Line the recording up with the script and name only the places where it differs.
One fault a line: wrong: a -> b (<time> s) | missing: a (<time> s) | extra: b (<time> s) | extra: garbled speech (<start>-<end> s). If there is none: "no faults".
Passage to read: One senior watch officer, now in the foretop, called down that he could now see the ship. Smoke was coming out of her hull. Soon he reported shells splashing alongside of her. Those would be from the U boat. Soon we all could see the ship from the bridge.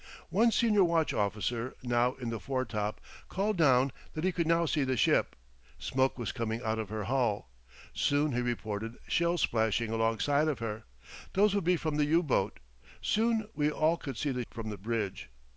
missing: ship (14.5 s)